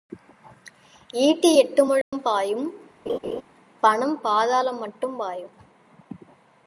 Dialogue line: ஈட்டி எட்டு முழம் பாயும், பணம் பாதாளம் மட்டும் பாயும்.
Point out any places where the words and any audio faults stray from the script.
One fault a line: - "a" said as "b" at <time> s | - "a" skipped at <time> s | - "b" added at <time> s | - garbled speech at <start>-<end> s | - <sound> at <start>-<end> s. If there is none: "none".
- dropout at 2.0-2.1 s
- laugh at 3.1-3.4 s